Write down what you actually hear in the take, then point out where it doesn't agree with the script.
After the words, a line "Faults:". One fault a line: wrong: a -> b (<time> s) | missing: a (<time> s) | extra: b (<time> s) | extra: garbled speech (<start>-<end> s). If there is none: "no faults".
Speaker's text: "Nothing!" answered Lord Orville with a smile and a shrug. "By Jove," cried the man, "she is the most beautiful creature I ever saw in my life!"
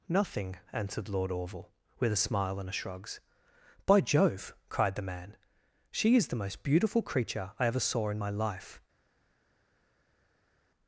"Nothing!" answered Lord Orville with a smile and a shrugs. "By Jove," cried the man, "she is the most beautiful creature I ever saw in my life!"
Faults:
wrong: shrug -> shrugs (2.7 s)